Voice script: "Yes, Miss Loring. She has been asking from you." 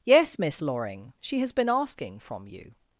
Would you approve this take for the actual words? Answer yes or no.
yes